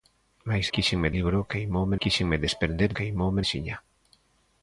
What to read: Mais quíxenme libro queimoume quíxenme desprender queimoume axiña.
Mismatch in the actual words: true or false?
false